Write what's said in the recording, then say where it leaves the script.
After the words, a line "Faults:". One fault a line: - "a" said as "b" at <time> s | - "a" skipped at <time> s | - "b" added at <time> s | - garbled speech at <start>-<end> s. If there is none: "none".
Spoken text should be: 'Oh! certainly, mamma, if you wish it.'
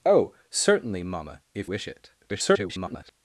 'Oh! certainly, mamma, if wish it.' [garbled]
Faults:
- "you" skipped at 1.7 s
- garbled speech at 2.2-3.1 s